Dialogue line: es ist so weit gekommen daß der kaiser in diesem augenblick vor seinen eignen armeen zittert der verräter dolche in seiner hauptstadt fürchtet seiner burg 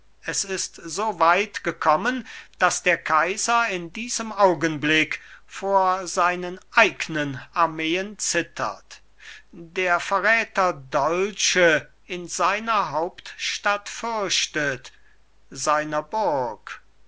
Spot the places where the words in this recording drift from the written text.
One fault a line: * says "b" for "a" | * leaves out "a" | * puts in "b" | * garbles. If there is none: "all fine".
all fine